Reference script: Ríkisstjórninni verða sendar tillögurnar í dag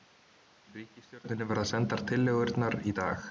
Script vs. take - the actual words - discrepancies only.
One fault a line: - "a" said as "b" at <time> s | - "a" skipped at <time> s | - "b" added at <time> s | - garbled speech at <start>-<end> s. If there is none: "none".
none